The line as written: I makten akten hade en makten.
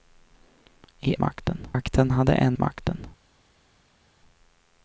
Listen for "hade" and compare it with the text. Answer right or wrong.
right